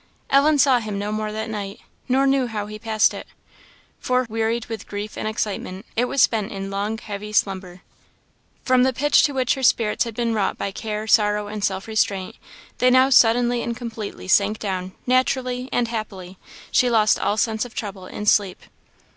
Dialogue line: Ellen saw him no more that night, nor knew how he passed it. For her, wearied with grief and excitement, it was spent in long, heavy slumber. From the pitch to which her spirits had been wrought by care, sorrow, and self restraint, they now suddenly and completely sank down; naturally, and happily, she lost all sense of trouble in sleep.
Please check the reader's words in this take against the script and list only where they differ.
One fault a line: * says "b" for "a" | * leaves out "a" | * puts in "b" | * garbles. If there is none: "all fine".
* leaves out "her"